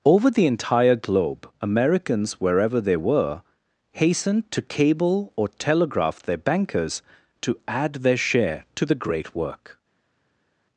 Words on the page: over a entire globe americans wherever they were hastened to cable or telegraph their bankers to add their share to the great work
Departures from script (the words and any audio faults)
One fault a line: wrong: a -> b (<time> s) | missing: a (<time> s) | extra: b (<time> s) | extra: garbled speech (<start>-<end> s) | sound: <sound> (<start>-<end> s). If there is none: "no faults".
wrong: a -> the (0.3 s)